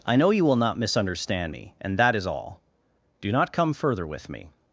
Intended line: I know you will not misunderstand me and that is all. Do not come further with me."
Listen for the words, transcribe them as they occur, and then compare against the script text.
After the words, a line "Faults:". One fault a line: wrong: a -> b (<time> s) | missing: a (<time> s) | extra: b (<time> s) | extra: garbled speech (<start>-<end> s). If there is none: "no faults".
I know you will not misunderstand me and that is all. Do not come further with me."
Faults:
no faults